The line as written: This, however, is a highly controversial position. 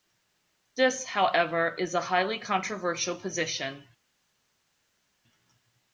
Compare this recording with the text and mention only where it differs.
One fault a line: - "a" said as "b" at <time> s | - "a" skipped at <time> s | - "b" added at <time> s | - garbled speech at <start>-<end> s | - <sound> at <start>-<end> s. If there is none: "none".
none